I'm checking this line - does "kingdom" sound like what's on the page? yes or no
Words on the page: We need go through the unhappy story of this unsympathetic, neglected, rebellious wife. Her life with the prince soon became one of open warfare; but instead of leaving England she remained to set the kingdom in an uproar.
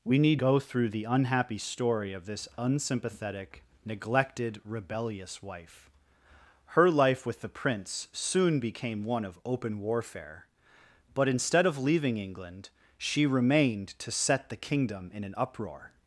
yes